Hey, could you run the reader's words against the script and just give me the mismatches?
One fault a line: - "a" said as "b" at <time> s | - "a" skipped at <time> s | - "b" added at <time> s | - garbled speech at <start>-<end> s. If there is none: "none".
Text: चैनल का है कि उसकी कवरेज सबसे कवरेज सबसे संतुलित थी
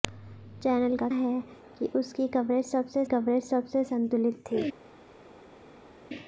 none